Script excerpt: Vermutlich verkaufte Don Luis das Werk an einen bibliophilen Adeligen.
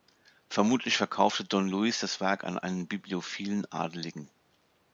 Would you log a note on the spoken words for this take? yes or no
no